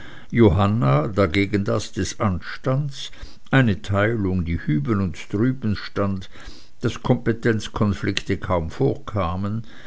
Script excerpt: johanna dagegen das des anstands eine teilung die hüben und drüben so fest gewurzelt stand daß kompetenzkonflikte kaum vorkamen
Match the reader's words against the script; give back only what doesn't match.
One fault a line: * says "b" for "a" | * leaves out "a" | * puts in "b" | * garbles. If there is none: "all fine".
* leaves out "so fest gewurzelt"